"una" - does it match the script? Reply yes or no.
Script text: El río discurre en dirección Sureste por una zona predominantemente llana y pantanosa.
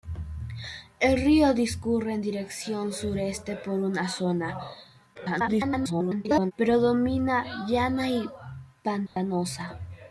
yes